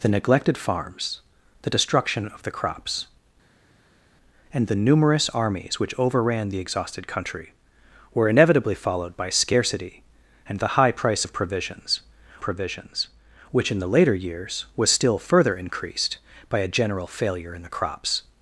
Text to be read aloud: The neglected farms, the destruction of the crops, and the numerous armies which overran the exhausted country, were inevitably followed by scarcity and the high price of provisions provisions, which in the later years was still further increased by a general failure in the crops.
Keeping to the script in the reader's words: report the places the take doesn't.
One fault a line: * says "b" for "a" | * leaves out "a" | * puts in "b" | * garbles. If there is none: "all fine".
all fine